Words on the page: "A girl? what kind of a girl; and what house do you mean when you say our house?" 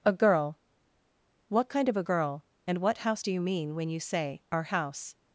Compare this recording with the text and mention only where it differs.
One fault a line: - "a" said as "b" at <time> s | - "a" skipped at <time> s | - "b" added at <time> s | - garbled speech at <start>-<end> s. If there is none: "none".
none